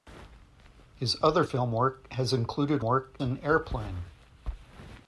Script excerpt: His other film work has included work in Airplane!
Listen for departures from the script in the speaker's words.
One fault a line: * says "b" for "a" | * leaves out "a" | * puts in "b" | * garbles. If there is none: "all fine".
all fine